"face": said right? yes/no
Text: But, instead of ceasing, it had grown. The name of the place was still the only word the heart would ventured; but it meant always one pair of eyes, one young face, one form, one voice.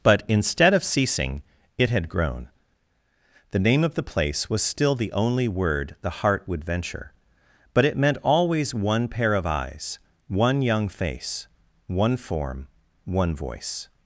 yes